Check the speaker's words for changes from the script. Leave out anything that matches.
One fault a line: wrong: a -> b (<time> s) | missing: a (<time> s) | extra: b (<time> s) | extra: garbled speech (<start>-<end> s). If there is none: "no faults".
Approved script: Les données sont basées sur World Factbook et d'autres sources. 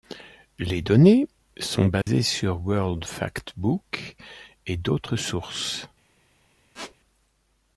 no faults